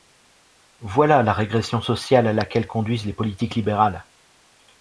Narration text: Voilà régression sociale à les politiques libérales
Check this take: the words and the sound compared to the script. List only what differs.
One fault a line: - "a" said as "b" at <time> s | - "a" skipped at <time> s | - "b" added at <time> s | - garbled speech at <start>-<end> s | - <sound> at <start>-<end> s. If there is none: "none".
- "la" added at 1.2 s
- "laquelle conduisent" added at 2.3 s